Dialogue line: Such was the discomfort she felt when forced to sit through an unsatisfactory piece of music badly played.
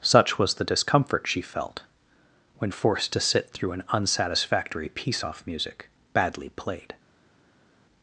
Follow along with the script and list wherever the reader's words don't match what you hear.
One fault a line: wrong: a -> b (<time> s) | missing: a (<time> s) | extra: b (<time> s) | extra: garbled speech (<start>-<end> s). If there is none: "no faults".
wrong: of -> off (5.2 s)